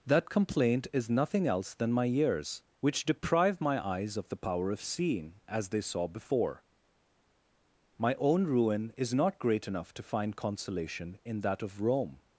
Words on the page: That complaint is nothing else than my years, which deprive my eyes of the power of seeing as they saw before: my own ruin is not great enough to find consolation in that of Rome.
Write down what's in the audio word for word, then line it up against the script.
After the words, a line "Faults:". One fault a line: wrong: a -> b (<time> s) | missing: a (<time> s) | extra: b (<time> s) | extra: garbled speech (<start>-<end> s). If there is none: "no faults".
That complaint is nothing else than my years, which deprive my eyes of the power of seeing as they saw before: my own ruin is not great enough to find consolation in that of Rome.
Faults:
no faults